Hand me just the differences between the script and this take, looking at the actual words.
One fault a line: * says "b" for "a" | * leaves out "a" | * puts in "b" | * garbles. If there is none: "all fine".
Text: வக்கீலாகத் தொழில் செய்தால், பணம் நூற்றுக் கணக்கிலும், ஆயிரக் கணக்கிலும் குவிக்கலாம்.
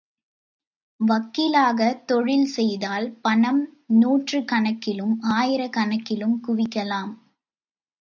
all fine